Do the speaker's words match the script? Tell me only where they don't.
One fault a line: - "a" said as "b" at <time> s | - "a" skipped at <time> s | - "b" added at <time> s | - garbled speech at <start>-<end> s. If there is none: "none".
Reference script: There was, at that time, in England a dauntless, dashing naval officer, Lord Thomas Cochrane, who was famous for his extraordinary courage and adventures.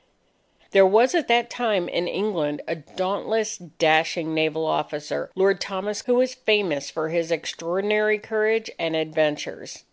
- "Cochrane" skipped at 6.0 s